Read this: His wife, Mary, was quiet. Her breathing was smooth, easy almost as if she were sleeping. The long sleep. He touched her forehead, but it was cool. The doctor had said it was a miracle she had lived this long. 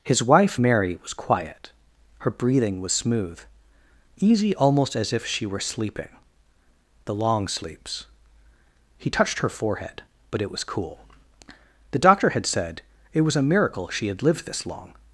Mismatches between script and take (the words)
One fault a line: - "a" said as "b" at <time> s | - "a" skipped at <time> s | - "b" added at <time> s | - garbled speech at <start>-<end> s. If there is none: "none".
- "sleep" said as "sleeps" at 7.5 s